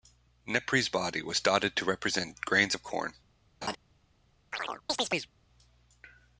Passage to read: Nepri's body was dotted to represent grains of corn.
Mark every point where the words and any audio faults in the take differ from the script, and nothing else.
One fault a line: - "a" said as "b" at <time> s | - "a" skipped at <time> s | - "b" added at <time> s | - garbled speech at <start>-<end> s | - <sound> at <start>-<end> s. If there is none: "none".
- laugh at 3.6-3.8 s
- chirp at 4.5-5.3 s